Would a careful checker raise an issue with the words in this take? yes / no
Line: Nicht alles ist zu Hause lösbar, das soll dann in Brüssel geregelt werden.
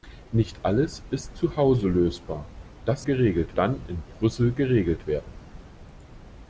yes